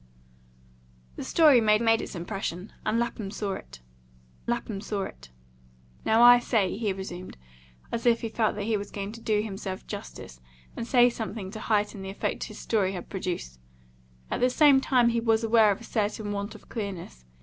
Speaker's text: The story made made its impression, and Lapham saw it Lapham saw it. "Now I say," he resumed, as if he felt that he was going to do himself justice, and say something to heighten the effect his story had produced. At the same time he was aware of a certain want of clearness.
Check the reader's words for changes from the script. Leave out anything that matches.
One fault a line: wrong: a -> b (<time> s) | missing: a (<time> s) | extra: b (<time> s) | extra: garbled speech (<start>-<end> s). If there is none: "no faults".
no faults